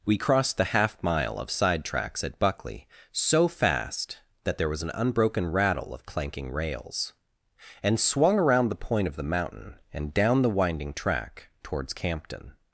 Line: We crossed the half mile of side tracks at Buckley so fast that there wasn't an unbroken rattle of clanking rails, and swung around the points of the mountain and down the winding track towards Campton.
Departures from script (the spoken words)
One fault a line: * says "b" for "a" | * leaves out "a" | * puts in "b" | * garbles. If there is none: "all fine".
* says "was" for "wasn't"
* says "point" for "points"